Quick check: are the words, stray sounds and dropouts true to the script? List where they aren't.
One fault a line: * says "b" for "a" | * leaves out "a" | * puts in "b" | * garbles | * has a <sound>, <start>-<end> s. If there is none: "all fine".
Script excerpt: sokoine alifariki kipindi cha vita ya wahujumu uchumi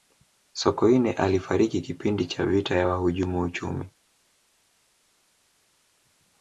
all fine